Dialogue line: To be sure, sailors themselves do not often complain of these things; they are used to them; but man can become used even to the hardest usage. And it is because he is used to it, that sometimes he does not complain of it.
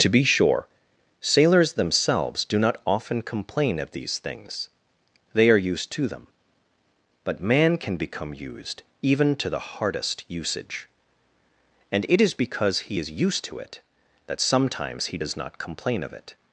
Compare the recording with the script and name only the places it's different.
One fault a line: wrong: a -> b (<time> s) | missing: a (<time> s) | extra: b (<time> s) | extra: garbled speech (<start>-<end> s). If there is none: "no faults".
no faults